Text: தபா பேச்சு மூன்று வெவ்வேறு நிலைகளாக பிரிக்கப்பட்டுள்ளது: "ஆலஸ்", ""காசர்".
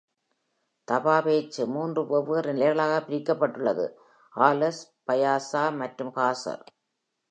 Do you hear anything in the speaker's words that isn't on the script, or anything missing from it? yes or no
yes